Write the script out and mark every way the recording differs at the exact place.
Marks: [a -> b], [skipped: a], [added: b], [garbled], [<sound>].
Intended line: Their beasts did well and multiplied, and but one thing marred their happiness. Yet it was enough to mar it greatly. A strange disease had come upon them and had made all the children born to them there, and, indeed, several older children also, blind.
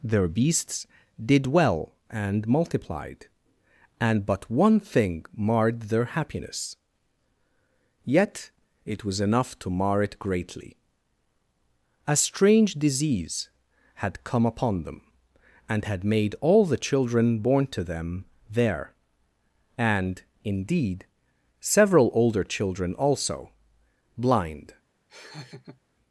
Their beasts did well and multiplied, and but one thing marred their happiness. Yet it was enough to mar it greatly. A strange disease had come upon them and had made all the children born to them there, and, indeed, several older children also, blind. [laugh]